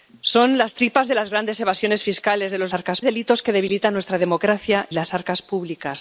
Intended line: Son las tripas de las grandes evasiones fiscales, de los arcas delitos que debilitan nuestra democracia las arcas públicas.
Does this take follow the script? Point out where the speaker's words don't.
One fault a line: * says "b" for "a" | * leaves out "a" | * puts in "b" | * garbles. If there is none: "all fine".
all fine